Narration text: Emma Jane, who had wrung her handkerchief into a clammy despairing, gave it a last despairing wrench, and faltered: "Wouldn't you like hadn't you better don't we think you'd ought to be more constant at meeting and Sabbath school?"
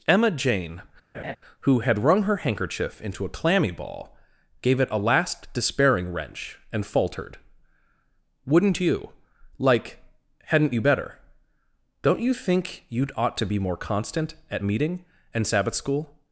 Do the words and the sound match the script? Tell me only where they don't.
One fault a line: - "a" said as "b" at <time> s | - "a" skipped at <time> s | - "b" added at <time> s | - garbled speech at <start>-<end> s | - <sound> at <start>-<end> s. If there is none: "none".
- laugh at 1.1-1.4 s
- "despairing" said as "ball" at 3.7 s
- "we" said as "you" at 12.2 s